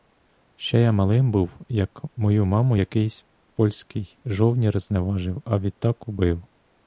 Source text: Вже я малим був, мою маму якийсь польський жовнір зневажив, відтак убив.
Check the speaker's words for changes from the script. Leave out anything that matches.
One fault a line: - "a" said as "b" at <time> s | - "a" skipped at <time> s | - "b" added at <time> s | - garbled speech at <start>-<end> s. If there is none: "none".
- "Вже" said as "Ще" at 0.6 s
- "як" added at 1.7 s
- "а" added at 5.4 s